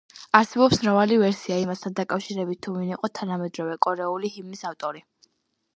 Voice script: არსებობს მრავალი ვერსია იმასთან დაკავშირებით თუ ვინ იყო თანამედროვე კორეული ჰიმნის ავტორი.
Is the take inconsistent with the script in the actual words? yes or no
no